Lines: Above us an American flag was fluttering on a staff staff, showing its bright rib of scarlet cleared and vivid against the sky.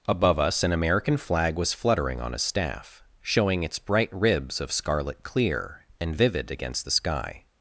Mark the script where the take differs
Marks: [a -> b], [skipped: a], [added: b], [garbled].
Above us an American flag was fluttering on a staff [skipped: staff,] showing its bright [rib -> ribs] of scarlet [cleared -> clear] and vivid against the sky.